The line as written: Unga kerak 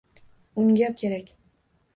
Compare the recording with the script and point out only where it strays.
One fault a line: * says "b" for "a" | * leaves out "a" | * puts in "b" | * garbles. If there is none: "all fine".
all fine